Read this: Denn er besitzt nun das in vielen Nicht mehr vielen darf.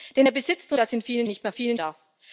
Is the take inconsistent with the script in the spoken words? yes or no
no